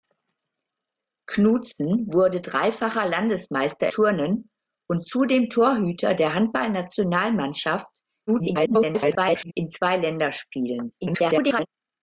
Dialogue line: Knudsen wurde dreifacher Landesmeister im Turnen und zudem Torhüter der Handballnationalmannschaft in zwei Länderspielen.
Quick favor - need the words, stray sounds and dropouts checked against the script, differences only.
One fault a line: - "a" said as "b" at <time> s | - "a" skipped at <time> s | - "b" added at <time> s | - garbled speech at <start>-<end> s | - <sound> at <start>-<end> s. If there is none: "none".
- "im" skipped at 3.9 s
- garbled speech at 8.3-9.5 s
- garbled speech at 11.0-11.7 s